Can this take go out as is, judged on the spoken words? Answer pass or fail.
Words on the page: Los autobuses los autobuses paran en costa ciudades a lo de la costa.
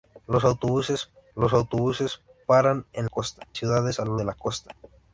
pass